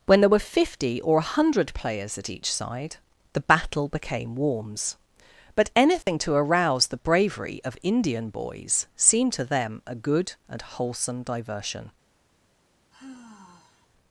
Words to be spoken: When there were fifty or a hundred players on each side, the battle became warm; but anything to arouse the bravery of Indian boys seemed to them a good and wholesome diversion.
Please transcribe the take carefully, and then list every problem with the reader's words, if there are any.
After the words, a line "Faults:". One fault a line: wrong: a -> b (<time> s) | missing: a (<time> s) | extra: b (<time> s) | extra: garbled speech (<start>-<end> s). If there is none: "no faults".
When there were fifty or a hundred players at each side, the battle became warms; but anything to arouse the bravery of Indian boys seemed to them a good and wholesome diversion.
Faults:
wrong: on -> at (2.2 s)
wrong: warm -> warms (4.3 s)